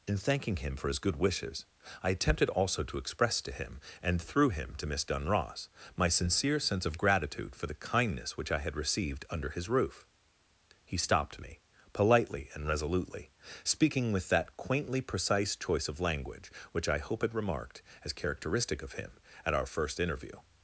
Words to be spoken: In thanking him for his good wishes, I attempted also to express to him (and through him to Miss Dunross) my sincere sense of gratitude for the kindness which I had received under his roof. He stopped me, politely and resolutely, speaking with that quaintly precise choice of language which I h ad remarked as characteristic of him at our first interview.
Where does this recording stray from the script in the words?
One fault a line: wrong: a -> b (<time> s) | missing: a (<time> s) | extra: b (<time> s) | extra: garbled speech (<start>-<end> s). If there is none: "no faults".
wrong: h ad -> hope had (17.0 s)